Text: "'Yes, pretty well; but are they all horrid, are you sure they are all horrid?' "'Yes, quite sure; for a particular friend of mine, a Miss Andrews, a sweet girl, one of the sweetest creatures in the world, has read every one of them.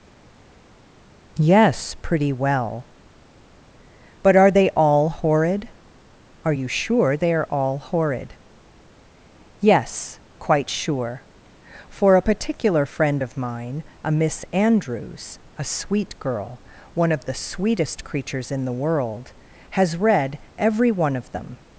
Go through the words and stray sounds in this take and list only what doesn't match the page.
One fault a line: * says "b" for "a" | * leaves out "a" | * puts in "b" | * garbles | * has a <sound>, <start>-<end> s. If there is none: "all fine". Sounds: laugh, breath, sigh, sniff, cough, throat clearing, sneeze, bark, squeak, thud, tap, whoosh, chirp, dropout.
all fine